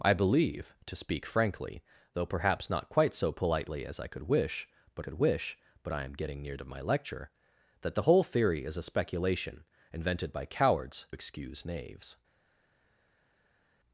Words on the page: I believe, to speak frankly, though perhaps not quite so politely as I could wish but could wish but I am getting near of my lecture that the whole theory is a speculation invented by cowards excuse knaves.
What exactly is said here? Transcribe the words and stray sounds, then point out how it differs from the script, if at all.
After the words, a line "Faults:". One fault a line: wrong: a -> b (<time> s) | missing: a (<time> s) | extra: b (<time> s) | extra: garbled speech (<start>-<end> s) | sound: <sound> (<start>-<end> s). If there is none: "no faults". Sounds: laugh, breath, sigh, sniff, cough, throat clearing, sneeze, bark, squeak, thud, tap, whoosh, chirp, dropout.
I believe, to speak frankly, though perhaps not quite so politely as I could wish but could wish but I am getting near of my lecture that the whole theory is a speculation invented by cowards excuse knaves.
Faults:
no faults